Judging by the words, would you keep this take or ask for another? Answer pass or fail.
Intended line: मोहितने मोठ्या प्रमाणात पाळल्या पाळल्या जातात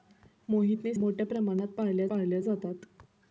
pass